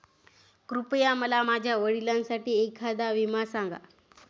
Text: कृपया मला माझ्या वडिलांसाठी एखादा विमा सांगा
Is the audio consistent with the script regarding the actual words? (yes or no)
yes